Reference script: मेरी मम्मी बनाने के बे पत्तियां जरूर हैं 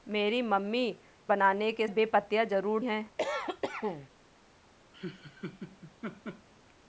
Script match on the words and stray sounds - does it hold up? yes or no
no